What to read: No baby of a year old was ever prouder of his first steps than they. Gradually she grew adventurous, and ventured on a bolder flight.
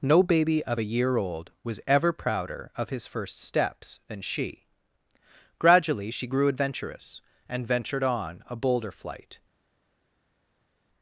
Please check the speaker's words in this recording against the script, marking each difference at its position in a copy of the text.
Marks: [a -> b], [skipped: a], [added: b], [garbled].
No baby of a year old was ever prouder of his first steps than [they. -> she] Gradually she grew adventurous, and ventured on a bolder flight.